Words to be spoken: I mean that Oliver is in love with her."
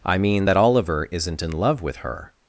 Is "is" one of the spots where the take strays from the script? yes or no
yes